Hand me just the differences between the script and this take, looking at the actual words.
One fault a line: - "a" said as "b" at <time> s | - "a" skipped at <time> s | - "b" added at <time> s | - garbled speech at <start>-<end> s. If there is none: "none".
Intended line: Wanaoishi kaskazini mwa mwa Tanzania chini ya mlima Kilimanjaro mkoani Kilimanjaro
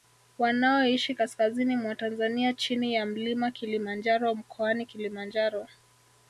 - "mwa" skipped at 1.9 s